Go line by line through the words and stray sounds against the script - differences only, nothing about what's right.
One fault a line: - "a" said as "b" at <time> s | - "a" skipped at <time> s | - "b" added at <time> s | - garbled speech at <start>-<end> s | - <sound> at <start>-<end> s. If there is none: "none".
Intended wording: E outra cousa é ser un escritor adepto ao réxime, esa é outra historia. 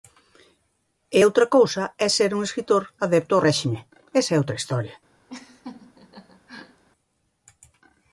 - laugh at 5.3-6.8 s